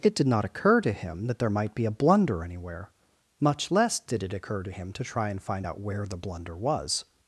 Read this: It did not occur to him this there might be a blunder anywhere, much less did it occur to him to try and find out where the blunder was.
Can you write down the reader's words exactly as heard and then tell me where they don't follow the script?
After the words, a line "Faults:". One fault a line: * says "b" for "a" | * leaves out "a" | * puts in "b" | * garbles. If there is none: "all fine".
It did not occur to him that there might be a blunder anywhere, much less did it occur to him to try and find out where the blunder was.
Faults:
* says "that" for "this"